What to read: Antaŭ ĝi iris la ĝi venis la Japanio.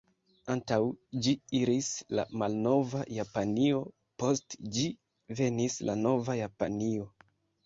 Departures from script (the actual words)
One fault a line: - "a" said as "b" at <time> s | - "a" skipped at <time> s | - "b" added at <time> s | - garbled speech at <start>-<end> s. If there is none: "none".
- "malnova Japanio post" added at 2.4 s
- "nova" added at 6.1 s